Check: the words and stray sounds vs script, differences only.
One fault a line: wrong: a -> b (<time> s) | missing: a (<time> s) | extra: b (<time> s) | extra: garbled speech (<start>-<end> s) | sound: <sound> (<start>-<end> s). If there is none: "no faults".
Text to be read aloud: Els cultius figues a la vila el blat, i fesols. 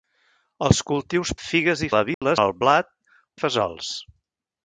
sound: dropout (2.1-2.2 s)